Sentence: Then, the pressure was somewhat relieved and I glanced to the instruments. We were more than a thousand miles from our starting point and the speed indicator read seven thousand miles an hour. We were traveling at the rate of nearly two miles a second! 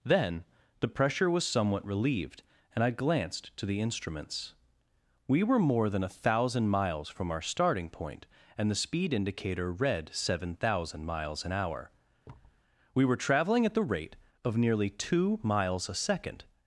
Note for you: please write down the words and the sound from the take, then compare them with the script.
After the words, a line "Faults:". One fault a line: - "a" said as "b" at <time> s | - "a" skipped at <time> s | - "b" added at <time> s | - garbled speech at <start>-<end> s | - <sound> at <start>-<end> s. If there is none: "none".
Then, the pressure was somewhat relieved and I glanced to the instruments. We were more than a thousand miles from our starting point and the speed indicator read seven thousand miles an hour. We were traveling at the rate of nearly two miles a second!
Faults:
- thud at 12.2-12.6 s